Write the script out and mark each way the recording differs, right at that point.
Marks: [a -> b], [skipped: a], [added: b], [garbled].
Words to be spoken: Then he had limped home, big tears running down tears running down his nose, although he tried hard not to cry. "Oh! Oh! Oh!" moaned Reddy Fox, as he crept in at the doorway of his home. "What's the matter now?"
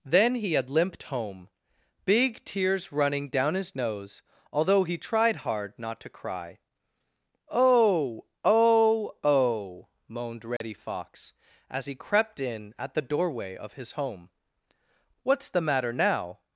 Then he had limped home, big tears running down [skipped: tears running down] his nose, although he tried hard not to cry. "Oh! Oh! Oh!" moaned Reddy Fox, as he crept in at the doorway of his home. "What's the matter now?"